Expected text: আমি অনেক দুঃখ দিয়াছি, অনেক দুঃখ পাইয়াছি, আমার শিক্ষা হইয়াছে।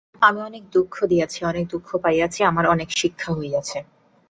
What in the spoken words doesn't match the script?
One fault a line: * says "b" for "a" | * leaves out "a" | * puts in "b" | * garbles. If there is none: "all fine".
* puts in "অনেক"